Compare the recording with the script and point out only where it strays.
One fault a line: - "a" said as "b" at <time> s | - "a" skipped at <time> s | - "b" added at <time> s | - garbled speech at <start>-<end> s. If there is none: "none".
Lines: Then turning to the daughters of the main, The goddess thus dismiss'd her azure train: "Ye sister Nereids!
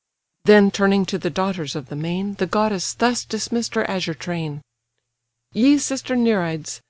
none